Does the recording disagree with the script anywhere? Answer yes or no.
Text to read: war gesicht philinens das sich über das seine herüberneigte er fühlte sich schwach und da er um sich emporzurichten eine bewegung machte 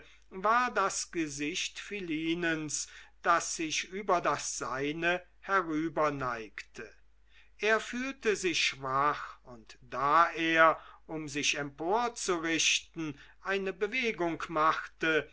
yes